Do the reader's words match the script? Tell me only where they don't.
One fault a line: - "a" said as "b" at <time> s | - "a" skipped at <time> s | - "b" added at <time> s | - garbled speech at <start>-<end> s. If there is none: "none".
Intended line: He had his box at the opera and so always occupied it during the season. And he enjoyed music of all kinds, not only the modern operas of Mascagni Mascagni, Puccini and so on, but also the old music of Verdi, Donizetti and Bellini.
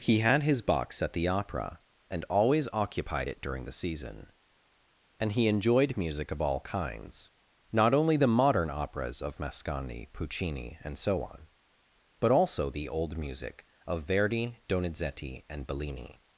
- "so" skipped at 2.2 s
- "Mascagni" skipped at 10.1 s